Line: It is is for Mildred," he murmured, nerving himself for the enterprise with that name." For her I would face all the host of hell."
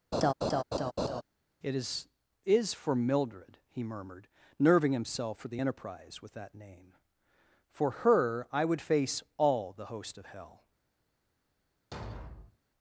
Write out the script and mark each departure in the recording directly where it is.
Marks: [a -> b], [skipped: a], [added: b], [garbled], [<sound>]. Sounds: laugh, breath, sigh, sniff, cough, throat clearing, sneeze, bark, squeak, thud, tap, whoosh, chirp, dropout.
[laugh] It is is for Mildred," he murmured, nerving himself for the enterprise with that name." For her I would face all the host of hell." [thud]